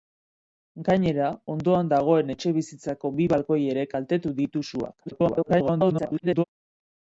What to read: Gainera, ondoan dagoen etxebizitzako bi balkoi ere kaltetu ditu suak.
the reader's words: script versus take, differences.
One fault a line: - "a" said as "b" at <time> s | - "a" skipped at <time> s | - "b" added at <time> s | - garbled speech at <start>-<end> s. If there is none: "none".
- garbled speech at 5.1-6.4 s